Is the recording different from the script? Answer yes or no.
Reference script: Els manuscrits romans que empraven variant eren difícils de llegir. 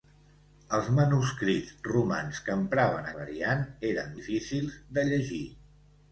no